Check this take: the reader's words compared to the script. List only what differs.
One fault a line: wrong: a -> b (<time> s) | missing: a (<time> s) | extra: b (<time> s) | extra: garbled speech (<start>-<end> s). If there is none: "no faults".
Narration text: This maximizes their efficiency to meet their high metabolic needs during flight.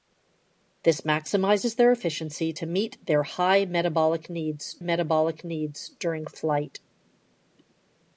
extra: metabolic needs (4.8 s)